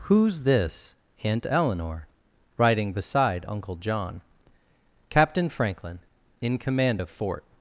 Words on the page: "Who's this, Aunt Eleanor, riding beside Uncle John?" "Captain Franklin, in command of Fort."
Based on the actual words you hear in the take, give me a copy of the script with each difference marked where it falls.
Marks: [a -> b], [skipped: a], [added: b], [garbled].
"Who's this, Aunt Eleanor, riding beside Uncle John?" "Captain Franklin, in command of Fort."